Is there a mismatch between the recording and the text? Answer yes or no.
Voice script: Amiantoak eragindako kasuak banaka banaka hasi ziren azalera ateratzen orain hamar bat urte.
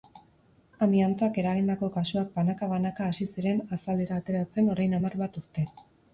no